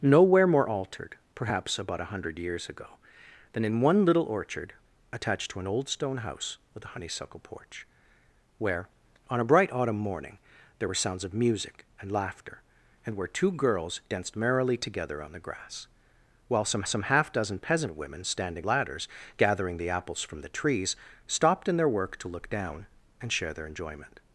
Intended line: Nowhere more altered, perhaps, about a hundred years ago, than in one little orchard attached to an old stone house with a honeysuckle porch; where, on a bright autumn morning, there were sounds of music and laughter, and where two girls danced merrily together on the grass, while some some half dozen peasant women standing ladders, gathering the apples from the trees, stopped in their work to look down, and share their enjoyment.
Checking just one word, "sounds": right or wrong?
right